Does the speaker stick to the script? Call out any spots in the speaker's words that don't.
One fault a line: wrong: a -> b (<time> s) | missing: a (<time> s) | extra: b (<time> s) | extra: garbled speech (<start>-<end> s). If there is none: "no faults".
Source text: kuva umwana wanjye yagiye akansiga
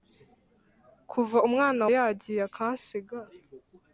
missing: wanjye (1.8 s)